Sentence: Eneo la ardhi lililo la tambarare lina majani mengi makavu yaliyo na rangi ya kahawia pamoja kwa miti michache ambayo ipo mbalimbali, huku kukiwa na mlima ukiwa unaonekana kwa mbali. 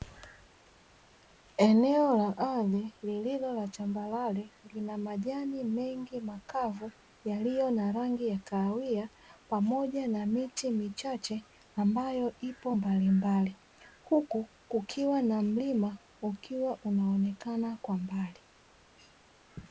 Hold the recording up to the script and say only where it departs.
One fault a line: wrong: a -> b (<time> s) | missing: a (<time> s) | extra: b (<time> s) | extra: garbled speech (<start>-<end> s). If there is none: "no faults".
wrong: kwa -> na (10.1 s)